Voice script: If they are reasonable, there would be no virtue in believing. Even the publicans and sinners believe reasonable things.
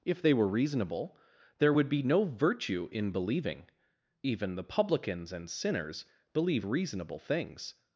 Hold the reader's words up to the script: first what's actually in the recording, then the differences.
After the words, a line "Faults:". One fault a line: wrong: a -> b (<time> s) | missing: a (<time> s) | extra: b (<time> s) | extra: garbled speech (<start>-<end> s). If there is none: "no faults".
If they were reasonable, there would be no virtue in believing. Even the publicans and sinners believe reasonable things.
Faults:
wrong: are -> were (0.3 s)